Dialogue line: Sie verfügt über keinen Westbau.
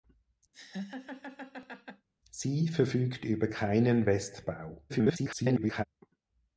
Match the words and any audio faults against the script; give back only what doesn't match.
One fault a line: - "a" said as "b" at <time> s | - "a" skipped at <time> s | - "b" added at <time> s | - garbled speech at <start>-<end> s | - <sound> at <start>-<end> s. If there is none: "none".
- laugh at 0.5-2.1 s
- garbled speech at 4.9-5.8 s